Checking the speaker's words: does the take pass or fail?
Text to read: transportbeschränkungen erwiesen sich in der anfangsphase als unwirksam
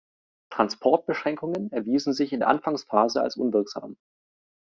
pass